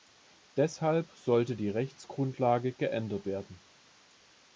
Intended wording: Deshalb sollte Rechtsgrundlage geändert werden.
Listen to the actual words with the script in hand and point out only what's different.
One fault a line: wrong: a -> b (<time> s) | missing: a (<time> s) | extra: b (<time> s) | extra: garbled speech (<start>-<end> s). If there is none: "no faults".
extra: die (1.5 s)